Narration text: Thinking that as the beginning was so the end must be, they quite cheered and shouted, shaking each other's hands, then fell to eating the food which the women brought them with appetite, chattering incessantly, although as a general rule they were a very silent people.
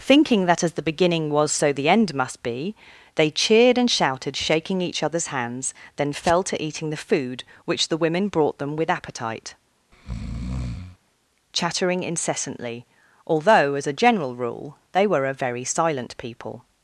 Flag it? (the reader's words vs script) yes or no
yes